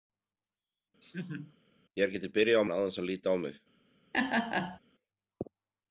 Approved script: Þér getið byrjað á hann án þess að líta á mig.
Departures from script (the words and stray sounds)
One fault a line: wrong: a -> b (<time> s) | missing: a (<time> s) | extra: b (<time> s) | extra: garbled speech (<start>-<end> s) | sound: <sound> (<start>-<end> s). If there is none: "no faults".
sound: laugh (1.0-1.6 s)
sound: laugh (4.1-4.8 s)